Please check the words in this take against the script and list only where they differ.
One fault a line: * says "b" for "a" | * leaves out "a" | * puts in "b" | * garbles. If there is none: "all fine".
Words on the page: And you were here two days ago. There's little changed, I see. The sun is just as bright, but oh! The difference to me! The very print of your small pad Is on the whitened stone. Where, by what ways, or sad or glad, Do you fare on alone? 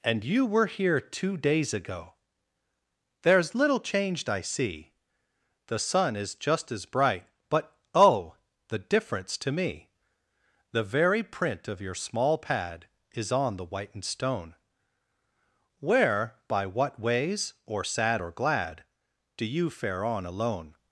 all fine